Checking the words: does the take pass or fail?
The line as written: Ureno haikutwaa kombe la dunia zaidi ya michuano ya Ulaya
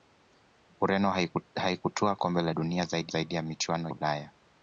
fail